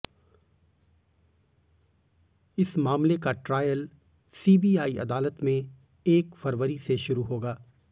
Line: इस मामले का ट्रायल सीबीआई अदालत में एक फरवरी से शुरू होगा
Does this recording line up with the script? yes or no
yes